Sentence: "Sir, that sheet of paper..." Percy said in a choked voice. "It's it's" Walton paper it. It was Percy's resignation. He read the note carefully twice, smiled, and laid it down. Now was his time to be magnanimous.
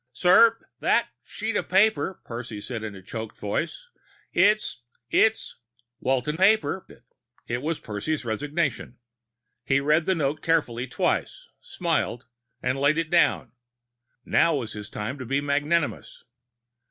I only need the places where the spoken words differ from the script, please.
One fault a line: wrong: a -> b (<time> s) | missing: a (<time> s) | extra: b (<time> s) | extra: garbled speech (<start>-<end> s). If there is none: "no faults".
no faults